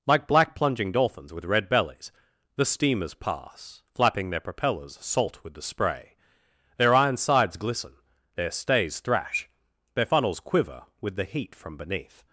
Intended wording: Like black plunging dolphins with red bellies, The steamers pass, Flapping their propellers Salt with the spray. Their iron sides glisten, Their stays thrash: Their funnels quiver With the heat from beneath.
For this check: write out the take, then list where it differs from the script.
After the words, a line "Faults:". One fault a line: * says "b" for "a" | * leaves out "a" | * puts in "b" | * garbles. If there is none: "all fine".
Like black plunging dolphins with red bellies, The steamers pass, Flapping their propellers Salt with the spray. Their iron sides glisten, Their stays thrash: Their funnels quiver With the heat from beneath.
Faults:
all fine